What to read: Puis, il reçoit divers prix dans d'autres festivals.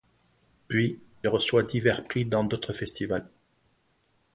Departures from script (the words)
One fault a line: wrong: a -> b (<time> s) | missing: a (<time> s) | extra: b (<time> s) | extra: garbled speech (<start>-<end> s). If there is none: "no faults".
missing: il (1.0 s)